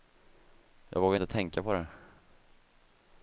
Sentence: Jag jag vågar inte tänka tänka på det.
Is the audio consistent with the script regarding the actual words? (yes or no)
no